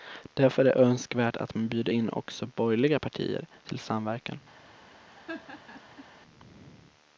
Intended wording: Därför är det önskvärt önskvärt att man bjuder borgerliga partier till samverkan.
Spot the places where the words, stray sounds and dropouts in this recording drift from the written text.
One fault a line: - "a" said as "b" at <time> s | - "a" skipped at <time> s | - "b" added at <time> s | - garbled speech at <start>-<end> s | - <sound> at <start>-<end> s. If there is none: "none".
- "önskvärt" skipped at 1.4 s
- "in också" added at 1.9 s
- laugh at 5.1-6.1 s